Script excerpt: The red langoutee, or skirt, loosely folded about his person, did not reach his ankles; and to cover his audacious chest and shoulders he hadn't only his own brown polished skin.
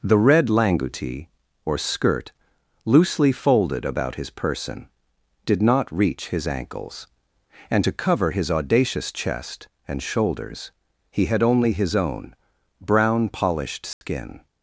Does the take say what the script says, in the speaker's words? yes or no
no